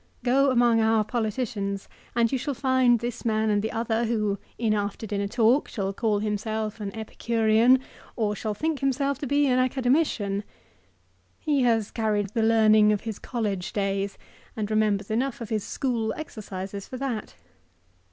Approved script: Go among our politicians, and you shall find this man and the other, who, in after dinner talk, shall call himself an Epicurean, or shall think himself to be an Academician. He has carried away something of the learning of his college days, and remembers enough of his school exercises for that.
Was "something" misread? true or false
true